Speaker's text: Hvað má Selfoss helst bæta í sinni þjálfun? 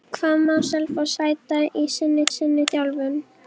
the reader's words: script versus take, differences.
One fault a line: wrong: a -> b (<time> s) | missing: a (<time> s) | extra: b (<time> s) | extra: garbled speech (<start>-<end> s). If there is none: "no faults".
missing: helst (1.1 s)
extra: sinni (2.4 s)